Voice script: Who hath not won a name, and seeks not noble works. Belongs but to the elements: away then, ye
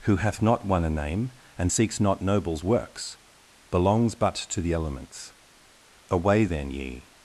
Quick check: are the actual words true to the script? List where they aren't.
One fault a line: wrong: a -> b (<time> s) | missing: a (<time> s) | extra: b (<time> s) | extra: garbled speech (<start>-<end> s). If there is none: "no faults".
wrong: noble -> nobles (2.2 s)